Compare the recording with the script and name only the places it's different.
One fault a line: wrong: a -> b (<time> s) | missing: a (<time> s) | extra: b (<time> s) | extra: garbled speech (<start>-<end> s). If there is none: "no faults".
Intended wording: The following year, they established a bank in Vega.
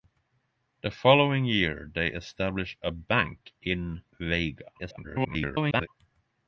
extra: garbled speech (4.8-5.9 s)